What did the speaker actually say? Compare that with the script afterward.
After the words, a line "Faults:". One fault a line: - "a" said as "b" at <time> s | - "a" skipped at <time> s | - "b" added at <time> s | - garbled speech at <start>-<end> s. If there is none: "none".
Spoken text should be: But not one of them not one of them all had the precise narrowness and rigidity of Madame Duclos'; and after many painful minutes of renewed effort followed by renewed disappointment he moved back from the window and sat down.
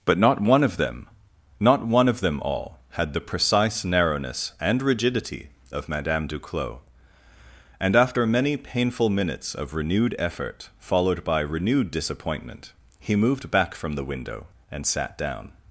But not one of them not one of them all had the precise narrowness and rigidity of Madame Duclos'; and after many painful minutes of renewed effort followed by renewed disappointment he moved back from the window and sat down.
Faults:
none